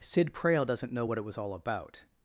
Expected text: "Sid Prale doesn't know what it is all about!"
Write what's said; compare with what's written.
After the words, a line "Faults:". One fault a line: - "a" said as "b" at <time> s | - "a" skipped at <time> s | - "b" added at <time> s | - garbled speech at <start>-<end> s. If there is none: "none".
"Sid Prale doesn't know what it was all about!"
Faults:
- "is" said as "was" at 1.2 s